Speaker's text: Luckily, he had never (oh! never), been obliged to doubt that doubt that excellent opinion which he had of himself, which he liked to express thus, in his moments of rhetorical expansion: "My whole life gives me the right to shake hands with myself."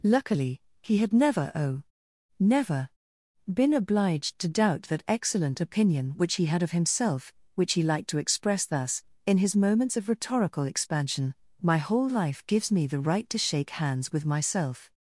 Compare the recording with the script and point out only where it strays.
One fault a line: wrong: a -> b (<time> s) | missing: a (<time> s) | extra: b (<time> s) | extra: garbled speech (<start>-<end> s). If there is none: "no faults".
missing: doubt that (5.0 s)